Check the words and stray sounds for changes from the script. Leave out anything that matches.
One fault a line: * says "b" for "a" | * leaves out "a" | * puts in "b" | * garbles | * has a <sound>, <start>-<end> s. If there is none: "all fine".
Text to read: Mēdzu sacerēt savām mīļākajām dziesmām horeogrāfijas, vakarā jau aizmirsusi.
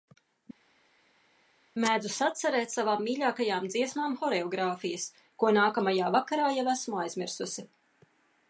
* puts in "ko nākamajā"
* puts in "esmu"